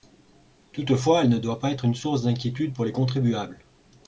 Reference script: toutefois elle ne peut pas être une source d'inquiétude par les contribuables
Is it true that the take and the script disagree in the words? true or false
true